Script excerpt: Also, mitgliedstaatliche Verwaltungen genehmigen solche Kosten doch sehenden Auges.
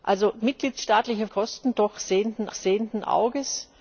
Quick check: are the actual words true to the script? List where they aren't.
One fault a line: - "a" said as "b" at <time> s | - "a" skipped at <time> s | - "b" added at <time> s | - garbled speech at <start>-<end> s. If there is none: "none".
- "Verwaltungen genehmigen solche" skipped at 1.3 s
- "sehenden" added at 2.5 s